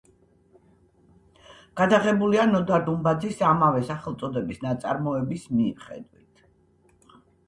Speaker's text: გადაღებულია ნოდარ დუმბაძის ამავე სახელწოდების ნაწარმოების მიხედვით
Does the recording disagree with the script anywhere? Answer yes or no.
no